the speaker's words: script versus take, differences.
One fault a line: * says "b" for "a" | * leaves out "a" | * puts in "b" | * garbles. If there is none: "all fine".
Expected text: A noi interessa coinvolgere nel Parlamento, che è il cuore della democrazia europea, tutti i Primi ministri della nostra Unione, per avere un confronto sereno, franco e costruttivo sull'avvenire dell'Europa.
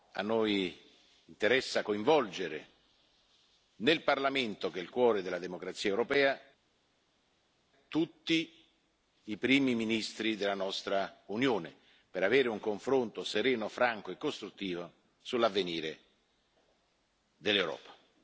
all fine